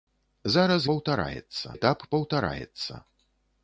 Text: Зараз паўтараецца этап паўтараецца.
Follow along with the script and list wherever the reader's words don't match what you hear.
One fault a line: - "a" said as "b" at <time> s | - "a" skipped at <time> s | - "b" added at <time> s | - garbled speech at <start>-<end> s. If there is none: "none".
none